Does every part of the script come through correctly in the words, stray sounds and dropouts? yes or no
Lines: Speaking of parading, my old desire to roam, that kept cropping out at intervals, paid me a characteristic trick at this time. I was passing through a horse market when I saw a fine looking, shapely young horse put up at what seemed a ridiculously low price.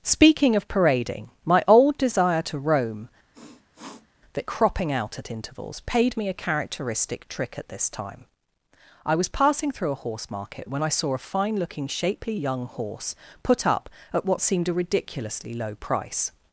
no